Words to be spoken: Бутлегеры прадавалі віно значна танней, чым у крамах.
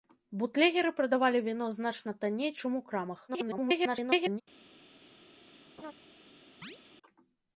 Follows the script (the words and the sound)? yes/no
no